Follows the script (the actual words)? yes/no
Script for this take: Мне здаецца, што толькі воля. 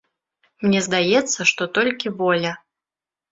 yes